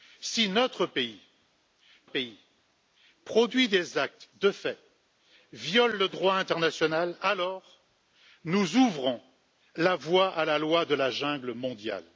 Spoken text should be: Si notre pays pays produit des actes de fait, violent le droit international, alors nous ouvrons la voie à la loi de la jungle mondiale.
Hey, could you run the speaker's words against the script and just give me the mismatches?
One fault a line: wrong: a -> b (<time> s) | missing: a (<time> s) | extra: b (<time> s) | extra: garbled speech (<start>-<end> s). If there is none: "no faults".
no faults